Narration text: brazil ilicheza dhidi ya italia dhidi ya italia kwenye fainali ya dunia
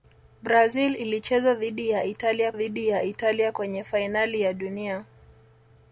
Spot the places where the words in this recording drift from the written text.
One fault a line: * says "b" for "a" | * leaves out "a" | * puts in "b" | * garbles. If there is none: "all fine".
all fine